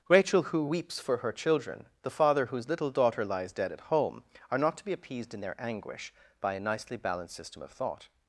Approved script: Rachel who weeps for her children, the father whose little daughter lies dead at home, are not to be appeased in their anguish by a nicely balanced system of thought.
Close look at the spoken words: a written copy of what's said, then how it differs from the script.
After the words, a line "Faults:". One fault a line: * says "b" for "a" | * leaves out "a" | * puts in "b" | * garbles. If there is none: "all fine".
Rachel who weeps for her children, the father whose little daughter lies dead at home, are not to be appeased in their anguish by a nicely balanced system of thought.
Faults:
all fine